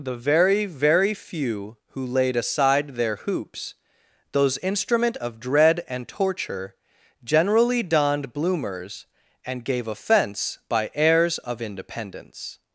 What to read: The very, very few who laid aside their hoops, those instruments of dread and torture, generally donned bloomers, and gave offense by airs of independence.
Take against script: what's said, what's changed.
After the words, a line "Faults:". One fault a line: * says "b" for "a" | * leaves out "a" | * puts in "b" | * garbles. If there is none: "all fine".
The very, very few who laid aside their hoops, those instrument of dread and torture, generally donned bloomers, and gave offense by airs of independence.
Faults:
* says "instrument" for "instruments"